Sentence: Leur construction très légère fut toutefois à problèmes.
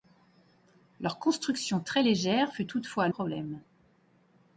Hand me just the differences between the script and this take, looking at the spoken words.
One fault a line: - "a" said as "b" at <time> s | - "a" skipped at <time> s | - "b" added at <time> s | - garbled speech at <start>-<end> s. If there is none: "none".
none